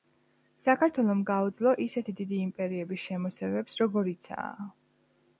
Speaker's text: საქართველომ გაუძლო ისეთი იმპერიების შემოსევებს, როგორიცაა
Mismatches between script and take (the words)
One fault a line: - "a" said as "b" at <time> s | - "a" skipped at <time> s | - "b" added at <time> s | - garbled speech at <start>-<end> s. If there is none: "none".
- "დიდი" added at 2.2 s